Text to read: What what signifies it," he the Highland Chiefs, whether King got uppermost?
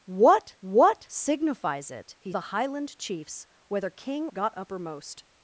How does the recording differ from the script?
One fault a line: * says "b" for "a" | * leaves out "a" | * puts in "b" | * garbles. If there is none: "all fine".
all fine